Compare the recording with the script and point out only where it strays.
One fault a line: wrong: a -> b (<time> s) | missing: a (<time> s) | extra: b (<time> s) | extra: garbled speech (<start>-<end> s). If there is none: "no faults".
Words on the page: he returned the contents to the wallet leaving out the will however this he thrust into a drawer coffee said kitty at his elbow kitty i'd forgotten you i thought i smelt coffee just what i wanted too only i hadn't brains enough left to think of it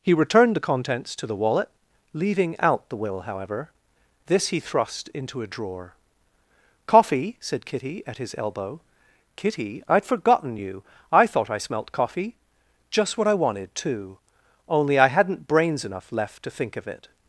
no faults